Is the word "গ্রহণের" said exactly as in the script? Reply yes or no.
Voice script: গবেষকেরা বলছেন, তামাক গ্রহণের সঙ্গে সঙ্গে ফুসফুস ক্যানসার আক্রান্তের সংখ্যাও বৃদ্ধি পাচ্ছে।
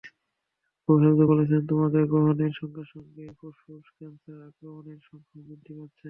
yes